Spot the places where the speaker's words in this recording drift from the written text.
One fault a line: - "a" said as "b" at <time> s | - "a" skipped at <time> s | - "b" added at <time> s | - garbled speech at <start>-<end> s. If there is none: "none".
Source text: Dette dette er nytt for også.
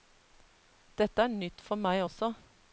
- "dette" skipped at 1.2 s
- "meg" added at 1.9 s